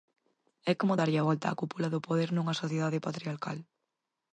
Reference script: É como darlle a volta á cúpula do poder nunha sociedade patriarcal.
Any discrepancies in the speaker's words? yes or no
no